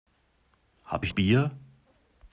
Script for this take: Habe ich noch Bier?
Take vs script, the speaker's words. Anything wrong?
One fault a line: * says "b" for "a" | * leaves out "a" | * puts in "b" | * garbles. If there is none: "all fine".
* leaves out "noch"